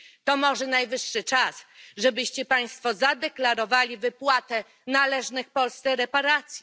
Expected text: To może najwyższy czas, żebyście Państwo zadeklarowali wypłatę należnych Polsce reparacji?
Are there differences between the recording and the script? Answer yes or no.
no